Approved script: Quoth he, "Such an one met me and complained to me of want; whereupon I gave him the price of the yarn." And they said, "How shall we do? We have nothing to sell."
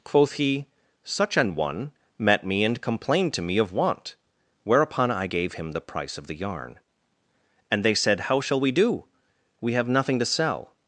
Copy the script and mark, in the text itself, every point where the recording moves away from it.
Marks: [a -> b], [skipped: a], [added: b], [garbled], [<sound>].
Quoth he, "Such an one met me and complained to me of want; whereupon I gave him the price of the yarn." And they said, "How shall we do? We have nothing to sell."